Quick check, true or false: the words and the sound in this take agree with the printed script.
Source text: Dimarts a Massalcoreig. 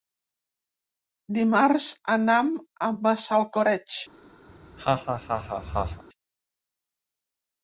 false